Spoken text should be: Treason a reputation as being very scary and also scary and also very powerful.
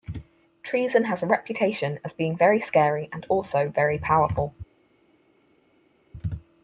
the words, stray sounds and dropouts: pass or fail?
fail